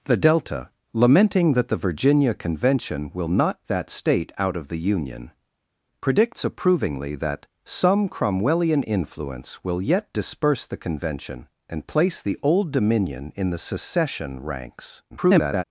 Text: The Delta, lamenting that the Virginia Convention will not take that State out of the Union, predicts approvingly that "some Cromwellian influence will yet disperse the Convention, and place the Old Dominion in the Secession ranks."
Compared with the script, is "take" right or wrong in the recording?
wrong